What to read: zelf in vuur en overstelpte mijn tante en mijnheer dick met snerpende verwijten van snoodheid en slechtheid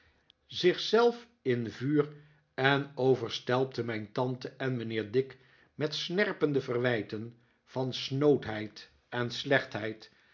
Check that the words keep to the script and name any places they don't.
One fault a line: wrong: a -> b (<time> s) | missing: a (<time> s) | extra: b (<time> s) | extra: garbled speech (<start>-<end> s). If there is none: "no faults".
no faults